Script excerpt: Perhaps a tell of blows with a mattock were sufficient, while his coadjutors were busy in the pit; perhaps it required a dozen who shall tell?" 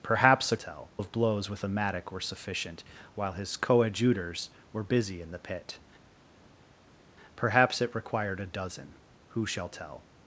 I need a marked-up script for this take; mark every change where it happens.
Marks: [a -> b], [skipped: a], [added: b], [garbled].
Perhaps a tell of blows with a mattock were sufficient, while his coadjutors were busy in the pit; perhaps it required a dozen who shall tell?"